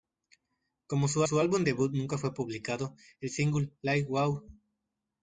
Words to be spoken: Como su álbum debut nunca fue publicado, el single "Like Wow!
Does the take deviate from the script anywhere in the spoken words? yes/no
yes